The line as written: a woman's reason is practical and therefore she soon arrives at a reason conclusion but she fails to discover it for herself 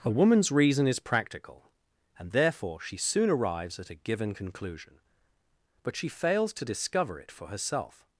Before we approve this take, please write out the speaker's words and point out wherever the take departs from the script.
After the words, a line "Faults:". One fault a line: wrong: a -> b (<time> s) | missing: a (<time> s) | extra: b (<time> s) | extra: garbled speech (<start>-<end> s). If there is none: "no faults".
a woman's reason is practical and therefore she soon arrives at a given conclusion but she fails to discover it for herself
Faults:
wrong: reason -> given (3.9 s)